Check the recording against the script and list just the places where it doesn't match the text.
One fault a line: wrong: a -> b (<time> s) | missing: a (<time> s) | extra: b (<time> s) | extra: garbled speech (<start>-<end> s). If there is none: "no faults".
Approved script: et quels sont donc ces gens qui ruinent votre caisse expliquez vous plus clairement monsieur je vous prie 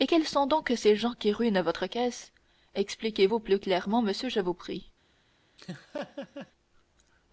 no faults